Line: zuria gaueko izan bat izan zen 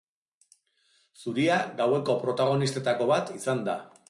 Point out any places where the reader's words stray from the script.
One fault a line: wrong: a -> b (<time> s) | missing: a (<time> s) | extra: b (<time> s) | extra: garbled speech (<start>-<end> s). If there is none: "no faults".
wrong: izan -> protagonistetako (2.2 s)
wrong: zen -> da (3.6 s)